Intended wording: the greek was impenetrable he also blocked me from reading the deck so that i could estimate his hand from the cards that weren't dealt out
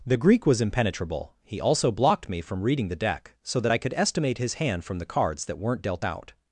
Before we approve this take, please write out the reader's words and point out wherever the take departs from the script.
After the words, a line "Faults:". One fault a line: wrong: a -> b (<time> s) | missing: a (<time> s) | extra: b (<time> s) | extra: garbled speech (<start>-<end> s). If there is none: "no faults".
the greek was impenetrable he also blocked me from reading the deck so that i could estimate his hand from the cards that weren't dealt out
Faults:
no faults